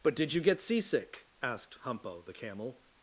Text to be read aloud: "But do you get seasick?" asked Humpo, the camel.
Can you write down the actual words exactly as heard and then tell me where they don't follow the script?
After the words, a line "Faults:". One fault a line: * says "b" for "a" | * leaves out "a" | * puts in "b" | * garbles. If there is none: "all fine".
"But did you get seasick?" asked Humpo, the camel.
Faults:
* says "did" for "do"